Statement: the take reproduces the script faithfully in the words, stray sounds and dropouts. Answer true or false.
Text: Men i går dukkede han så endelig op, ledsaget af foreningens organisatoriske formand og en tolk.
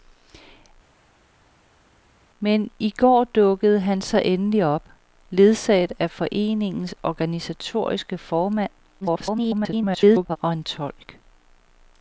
false